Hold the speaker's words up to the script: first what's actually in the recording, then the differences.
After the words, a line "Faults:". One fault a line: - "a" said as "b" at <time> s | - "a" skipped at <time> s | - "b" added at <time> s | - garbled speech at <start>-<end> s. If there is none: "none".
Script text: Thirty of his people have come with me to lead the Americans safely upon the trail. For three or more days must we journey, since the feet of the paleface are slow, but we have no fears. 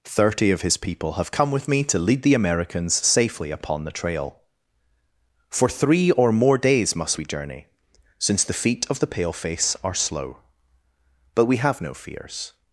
Thirty of his people have come with me to lead the Americans safely upon the trail. For three or more days must we journey, since the feet of the paleface are slow, but we have no fears.
Faults:
none